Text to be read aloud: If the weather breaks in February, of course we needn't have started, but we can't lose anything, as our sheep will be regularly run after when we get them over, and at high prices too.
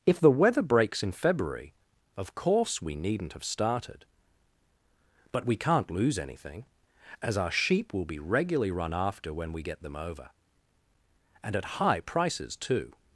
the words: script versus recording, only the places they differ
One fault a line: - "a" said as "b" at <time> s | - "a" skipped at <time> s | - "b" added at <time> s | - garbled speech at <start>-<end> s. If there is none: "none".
none